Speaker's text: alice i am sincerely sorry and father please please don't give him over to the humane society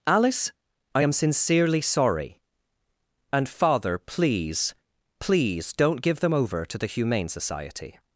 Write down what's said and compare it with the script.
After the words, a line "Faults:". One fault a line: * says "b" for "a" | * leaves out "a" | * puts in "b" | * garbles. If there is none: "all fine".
alice i am sincerely sorry and father please please don't give them over to the humane society
Faults:
* says "them" for "him"